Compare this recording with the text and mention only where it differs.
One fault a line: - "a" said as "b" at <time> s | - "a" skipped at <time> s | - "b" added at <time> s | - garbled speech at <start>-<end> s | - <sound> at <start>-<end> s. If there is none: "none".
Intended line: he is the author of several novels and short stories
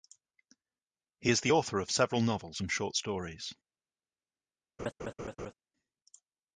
- laugh at 4.8-5.5 s